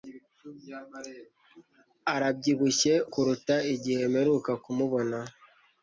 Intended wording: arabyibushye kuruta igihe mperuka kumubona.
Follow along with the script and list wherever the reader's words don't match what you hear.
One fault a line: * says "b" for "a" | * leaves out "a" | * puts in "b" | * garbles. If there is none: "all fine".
all fine